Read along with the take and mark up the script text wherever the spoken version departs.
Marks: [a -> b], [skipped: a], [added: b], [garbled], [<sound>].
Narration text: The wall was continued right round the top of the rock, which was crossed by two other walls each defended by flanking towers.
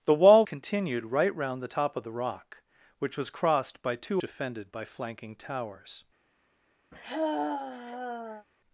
The wall [skipped: was] continued right round the top of the rock, which was crossed by two [skipped: other walls each] defended by flanking towers. [sigh]